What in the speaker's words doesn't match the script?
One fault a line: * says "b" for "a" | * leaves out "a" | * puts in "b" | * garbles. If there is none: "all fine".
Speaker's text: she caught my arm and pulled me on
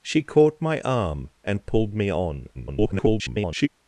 * garbles